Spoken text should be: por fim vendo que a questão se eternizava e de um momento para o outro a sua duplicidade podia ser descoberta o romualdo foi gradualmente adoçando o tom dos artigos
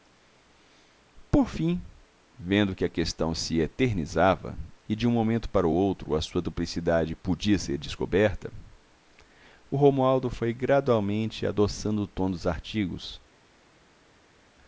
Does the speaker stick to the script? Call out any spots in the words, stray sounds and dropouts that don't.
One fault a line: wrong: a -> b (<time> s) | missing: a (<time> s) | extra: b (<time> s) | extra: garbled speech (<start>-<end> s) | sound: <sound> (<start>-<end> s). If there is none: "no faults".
no faults